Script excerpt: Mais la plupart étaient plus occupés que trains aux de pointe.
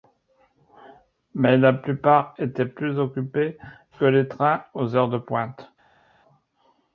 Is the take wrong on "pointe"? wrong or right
right